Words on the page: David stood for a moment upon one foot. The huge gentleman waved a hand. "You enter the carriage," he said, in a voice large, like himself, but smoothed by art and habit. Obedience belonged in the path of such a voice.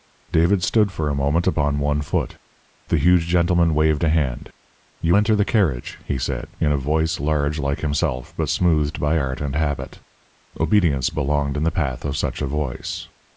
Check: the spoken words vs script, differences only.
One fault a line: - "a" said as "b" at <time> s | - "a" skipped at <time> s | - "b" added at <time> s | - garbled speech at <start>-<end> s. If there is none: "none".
none